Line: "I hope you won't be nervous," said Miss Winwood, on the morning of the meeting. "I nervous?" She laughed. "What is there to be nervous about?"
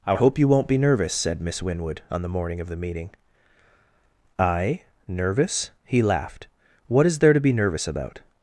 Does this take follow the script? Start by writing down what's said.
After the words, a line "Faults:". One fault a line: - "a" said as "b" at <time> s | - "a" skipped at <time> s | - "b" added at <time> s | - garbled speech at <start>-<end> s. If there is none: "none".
"I hope you won't be nervous," said Miss Winwood, on the morning of the meeting. "I nervous?" He laughed. "What is there to be nervous about?"
Faults:
- "She" said as "He" at 5.8 s